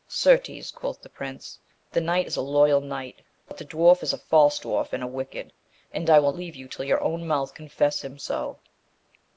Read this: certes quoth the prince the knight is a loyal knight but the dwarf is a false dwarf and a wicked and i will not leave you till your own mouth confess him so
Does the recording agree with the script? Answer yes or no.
no